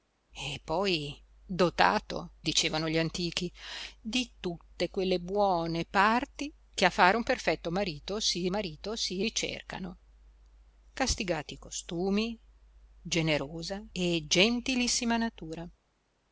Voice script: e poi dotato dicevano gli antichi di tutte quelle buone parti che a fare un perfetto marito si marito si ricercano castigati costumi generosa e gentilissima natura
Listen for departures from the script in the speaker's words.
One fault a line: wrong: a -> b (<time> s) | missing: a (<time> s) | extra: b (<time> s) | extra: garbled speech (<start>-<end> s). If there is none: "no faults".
no faults